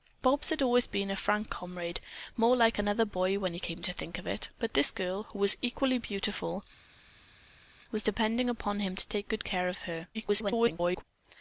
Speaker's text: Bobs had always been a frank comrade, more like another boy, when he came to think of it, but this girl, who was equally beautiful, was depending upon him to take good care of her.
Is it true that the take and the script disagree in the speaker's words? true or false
true